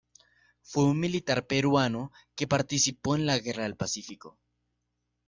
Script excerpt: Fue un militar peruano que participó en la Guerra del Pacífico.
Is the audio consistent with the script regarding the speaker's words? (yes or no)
yes